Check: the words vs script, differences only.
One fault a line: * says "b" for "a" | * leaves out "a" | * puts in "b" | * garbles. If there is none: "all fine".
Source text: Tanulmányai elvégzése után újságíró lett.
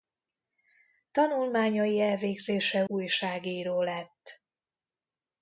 * leaves out "után"